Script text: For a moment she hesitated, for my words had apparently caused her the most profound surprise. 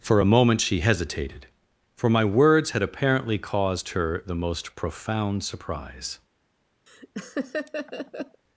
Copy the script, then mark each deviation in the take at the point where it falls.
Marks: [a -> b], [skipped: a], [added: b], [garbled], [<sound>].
For a moment she hesitated, for my words had apparently caused her the most profound surprise. [laugh]